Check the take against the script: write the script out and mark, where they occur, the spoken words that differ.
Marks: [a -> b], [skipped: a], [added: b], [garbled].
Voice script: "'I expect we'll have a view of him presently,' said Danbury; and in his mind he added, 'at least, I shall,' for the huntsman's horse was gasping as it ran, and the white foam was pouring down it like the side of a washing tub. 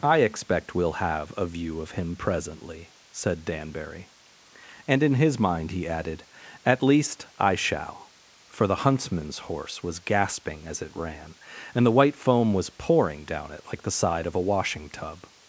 "'I expect we'll have a view of him presently,' said Danbury; and in his mind he added, 'at least, I shall,' for the huntsman's horse was gasping as it ran, and the white foam was pouring down it like the side of a washing tub.